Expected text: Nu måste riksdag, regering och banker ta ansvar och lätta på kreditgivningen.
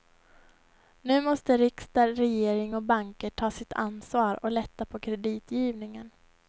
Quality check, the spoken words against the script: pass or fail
fail